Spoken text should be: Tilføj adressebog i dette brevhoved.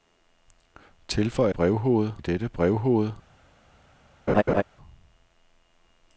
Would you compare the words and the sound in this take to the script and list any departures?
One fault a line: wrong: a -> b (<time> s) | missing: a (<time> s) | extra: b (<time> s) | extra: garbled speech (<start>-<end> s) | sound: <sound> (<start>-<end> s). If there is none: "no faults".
wrong: adressebog -> brevhoved (1.5 s)
sound: laugh (4.3-4.6 s)